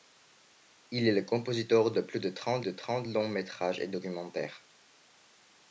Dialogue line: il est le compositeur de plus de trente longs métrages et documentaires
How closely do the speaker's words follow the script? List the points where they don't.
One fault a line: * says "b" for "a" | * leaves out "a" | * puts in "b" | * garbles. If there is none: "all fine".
* puts in "de trente"